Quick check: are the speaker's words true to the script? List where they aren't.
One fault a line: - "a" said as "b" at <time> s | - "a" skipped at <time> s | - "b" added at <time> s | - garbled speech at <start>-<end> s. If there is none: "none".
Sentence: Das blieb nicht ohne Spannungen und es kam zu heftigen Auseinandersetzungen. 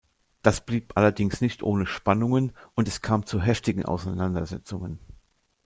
- "allerdings" added at 1.0 s